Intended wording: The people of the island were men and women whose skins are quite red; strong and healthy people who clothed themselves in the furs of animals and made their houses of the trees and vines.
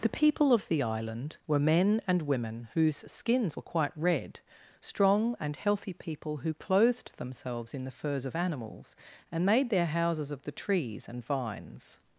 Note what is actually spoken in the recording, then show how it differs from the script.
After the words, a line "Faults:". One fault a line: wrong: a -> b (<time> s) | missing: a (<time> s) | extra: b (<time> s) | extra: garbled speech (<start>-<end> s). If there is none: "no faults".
The people of the island were men and women whose skins were quite red; strong and healthy people who clothed themselves in the furs of animals and made their houses of the trees and vines.
Faults:
wrong: are -> were (3.5 s)